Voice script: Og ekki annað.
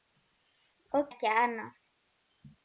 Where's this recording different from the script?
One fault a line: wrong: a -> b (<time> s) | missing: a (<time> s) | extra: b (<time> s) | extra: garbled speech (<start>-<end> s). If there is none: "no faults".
no faults